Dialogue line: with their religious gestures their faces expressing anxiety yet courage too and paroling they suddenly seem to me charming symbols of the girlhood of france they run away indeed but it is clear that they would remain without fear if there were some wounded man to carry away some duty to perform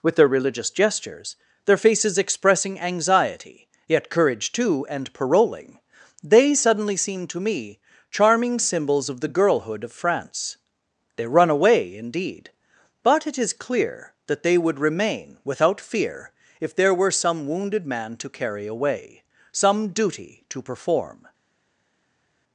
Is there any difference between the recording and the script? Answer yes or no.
no